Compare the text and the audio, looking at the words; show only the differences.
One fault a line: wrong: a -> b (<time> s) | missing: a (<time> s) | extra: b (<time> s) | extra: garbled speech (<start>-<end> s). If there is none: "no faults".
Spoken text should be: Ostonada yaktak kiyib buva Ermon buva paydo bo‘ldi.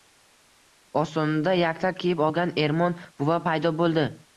wrong: buva -> olgan (2.3 s)